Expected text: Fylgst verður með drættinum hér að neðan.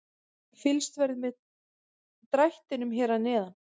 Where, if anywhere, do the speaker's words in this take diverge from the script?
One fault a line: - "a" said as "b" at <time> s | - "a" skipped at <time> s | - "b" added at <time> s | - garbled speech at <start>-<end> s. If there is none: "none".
none